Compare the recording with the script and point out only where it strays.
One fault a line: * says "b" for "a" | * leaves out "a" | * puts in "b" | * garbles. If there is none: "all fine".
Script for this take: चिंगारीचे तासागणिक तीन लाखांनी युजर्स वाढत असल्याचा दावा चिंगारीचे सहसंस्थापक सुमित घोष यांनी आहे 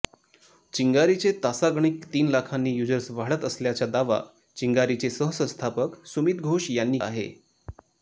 all fine